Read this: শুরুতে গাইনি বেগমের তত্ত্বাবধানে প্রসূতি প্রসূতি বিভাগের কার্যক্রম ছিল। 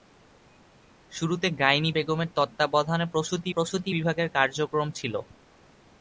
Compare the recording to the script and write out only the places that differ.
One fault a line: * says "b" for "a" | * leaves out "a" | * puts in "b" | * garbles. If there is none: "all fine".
all fine